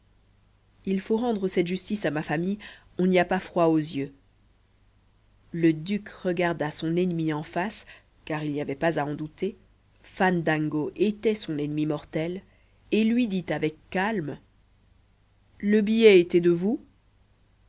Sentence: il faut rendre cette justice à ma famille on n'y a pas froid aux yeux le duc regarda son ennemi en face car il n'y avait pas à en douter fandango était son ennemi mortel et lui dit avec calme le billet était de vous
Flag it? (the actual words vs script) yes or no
no